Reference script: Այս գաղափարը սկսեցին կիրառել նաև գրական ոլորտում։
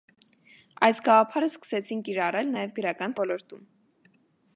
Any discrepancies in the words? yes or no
no